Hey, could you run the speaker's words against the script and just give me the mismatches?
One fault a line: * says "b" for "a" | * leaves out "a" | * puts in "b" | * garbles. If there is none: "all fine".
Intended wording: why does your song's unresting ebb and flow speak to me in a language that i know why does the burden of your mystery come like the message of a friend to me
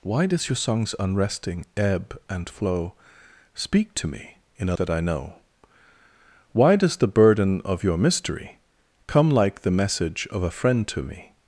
* leaves out "language"